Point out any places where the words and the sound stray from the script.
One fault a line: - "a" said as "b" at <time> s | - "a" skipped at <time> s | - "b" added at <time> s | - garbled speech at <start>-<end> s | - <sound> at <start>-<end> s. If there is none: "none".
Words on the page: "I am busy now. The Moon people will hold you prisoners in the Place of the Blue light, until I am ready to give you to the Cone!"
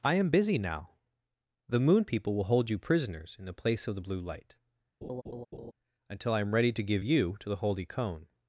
- laugh at 5.0-5.7 s
- "holy" added at 7.6 s